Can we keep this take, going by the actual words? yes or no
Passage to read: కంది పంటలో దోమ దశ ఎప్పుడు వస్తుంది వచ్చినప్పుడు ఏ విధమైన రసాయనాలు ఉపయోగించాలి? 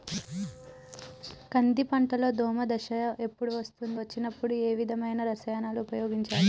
yes